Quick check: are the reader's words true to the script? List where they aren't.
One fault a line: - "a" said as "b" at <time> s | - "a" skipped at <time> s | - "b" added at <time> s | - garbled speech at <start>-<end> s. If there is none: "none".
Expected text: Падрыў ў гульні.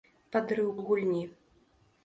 none